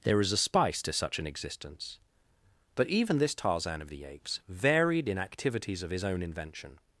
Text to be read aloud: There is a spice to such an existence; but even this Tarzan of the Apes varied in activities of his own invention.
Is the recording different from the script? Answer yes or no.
no